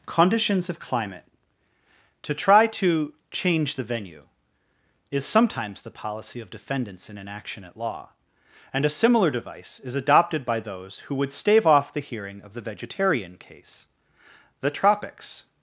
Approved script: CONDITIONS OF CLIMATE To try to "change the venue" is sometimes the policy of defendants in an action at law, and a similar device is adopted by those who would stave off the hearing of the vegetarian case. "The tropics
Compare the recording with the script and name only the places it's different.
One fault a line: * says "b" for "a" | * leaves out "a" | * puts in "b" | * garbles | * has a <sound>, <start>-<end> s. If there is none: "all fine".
all fine